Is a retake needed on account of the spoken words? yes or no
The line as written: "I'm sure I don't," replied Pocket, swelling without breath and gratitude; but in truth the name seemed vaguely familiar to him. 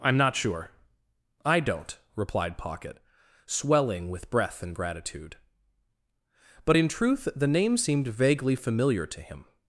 yes